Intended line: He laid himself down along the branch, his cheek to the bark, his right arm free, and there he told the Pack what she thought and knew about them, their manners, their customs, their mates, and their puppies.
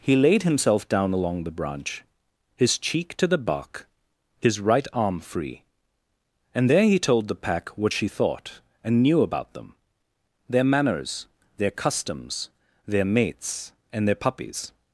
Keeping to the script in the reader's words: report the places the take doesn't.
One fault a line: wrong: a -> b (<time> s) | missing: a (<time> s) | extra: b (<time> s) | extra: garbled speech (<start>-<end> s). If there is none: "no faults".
no faults